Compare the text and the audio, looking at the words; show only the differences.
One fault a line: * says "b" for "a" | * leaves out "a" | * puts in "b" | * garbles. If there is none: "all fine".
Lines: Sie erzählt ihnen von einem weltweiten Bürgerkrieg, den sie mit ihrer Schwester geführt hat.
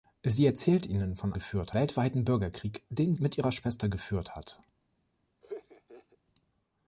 * says "geführt" for "einem"
* leaves out "sie"